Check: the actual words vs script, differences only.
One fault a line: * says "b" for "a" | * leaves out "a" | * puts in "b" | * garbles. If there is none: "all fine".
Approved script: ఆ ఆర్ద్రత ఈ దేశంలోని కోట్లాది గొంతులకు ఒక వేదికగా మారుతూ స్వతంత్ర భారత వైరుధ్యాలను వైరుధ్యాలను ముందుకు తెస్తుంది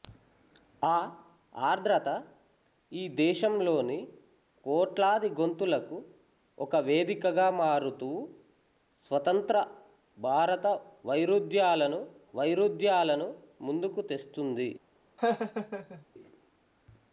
all fine